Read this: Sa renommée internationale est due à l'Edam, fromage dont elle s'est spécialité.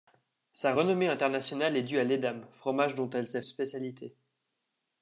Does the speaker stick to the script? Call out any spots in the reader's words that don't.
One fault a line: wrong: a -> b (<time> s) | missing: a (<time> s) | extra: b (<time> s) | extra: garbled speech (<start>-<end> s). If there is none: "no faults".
no faults